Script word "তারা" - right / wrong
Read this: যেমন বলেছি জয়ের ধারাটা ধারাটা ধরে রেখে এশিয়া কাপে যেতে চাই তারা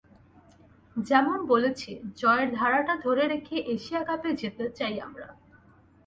wrong